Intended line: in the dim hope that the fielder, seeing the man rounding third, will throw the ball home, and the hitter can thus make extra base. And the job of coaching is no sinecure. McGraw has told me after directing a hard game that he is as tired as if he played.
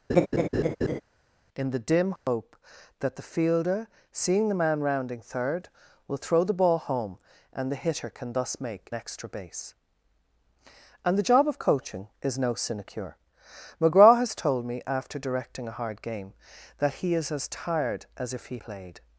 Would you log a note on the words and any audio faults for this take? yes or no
yes